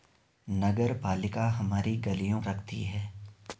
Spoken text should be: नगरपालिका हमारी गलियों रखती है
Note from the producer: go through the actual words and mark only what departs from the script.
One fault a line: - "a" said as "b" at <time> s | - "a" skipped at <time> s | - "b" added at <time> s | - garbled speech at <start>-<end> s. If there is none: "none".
none